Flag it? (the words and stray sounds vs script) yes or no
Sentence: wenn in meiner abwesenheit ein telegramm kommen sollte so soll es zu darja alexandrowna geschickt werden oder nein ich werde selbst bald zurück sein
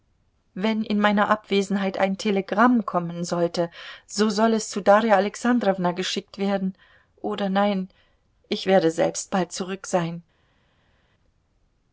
no